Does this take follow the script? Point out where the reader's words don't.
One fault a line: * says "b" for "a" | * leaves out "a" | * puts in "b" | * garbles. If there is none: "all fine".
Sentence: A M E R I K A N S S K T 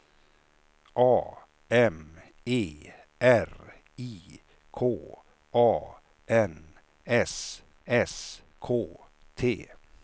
all fine